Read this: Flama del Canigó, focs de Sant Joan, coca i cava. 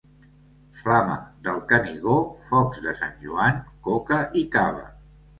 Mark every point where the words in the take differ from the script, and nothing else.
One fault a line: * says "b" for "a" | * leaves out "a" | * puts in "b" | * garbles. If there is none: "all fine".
all fine